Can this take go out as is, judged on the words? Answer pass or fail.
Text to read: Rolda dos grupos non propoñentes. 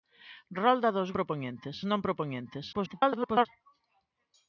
fail